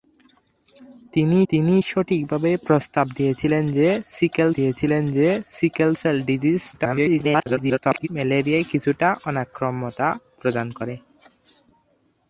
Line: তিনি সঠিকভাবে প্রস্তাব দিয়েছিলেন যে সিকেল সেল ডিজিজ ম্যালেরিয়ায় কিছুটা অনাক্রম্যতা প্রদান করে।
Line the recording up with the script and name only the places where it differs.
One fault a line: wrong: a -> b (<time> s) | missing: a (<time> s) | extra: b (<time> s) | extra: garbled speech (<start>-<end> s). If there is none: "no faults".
extra: তিনি (1.5 s)
extra: দিয়েছিলেন যে সিকেল (4.5 s)
extra: garbled speech (6.7-8.1 s)